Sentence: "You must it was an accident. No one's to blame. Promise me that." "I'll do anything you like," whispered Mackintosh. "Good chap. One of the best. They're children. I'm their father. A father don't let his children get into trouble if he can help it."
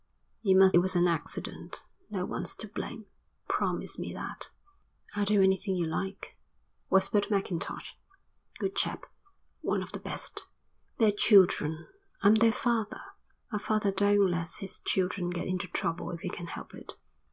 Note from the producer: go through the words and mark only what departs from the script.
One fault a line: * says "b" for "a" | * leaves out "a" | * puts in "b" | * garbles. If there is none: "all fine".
all fine